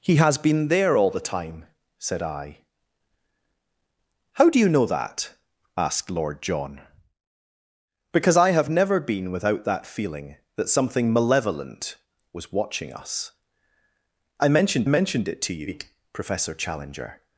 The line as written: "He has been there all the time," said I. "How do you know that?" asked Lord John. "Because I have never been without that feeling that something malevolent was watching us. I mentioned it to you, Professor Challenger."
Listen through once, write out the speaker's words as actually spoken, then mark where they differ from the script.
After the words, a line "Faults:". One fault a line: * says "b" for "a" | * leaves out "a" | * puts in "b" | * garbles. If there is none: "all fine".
"He has been there all the time," said I. "How do you know that?" asked Lord John. "Because I have never been without that feeling that something malevolent was watching us. I mentioned mentioned it to you, Professor Challenger."
Faults:
* puts in "mentioned"